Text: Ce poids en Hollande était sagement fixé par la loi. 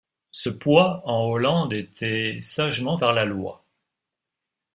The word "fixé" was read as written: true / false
false